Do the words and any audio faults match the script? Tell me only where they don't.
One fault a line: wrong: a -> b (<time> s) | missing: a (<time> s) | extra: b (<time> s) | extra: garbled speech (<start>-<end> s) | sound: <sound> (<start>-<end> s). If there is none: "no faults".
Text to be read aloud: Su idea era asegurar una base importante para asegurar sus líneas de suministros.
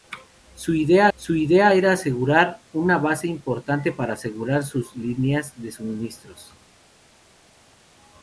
extra: su idea (1.2 s)